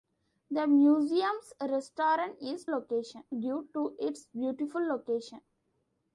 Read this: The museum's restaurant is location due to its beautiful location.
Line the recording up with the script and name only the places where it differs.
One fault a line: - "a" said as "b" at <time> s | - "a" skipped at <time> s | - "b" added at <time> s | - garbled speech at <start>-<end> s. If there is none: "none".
none